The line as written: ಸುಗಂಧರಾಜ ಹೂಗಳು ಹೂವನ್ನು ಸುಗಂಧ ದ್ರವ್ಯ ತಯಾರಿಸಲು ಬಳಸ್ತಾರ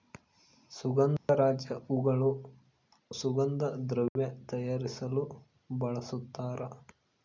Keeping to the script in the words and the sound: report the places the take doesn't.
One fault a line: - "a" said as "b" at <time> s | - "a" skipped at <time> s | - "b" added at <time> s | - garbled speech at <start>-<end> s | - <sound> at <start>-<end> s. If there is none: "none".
- dropout at 1.2-1.3 s
- "ಹೂವನ್ನು" skipped at 2.3 s
- dropout at 4.1-4.2 s